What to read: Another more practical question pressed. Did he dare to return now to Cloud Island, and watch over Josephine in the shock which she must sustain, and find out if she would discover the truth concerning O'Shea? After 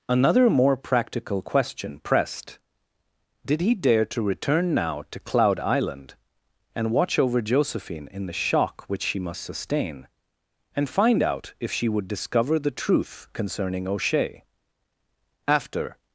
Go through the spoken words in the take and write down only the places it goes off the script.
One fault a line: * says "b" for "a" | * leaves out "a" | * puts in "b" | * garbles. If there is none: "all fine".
all fine